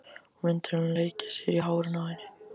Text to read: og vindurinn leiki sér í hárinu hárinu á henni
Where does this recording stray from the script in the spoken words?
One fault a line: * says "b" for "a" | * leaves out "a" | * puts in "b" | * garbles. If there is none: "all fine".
* leaves out "hárinu"